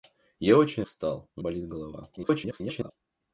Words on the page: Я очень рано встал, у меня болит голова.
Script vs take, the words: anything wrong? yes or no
yes